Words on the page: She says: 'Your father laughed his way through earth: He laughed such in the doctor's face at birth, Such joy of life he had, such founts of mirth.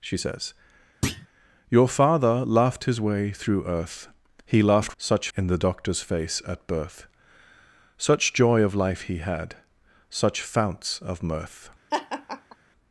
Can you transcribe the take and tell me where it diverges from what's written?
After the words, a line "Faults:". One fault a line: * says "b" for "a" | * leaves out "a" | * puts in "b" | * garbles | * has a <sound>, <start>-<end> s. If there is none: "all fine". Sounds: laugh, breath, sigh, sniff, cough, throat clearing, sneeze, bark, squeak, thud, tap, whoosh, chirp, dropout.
She says: 'Your father laughed his way through earth: He laughed such in the doctor's face at birth, Such joy of life he had, such founts of mirth.
Faults:
* has a thud, 1.0-1.3 s
* has a laugh, 11.9-12.6 s